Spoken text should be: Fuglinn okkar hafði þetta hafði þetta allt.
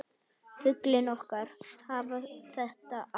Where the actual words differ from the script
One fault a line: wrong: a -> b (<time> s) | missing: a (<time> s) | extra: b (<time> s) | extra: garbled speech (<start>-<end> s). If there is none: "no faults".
missing: hafði þetta (2.7 s)